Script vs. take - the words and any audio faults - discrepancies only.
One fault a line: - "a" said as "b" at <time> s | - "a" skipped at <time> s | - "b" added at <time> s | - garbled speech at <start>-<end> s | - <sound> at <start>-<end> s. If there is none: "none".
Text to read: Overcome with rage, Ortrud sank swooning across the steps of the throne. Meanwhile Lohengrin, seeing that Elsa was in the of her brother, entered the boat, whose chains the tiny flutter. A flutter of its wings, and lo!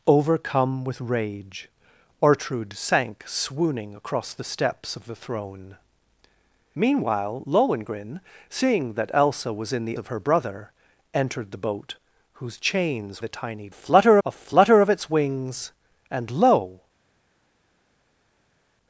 none